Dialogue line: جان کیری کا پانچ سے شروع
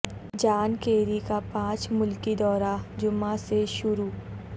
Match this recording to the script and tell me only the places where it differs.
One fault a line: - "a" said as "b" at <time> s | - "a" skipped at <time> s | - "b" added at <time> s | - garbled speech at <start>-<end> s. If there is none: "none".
- "ملکی دورہ جمعہ" added at 1.9 s